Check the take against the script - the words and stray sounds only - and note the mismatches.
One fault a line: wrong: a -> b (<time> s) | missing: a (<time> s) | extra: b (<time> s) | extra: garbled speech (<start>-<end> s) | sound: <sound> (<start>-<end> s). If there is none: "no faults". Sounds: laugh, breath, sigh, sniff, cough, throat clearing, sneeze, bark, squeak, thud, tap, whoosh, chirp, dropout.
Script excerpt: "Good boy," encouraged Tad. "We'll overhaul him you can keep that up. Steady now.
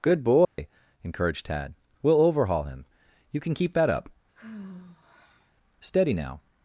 sound: dropout (0.4-0.6 s)
sound: sigh (4.3-5.5 s)